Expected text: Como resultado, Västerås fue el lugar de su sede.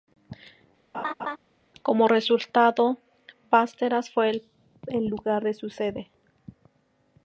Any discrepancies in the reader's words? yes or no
no